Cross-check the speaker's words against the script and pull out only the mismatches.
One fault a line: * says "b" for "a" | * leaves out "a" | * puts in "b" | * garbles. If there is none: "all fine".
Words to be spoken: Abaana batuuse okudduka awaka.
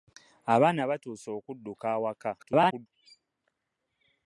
* garbles